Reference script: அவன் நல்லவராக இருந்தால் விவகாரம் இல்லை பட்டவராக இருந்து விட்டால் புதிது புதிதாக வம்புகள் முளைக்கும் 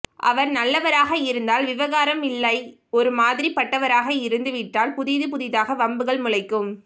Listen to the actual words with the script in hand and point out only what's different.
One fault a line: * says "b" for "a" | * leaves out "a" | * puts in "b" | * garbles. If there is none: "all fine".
* says "அவர்" for "அவன்"
* puts in "ஒரு மாதிரி"